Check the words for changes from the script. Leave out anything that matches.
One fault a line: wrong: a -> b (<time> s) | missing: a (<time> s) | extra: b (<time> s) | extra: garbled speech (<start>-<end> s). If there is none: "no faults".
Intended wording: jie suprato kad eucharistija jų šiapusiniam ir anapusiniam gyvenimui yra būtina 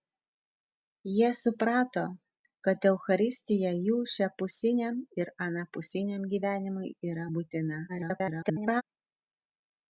extra: garbled speech (7.9-8.8 s)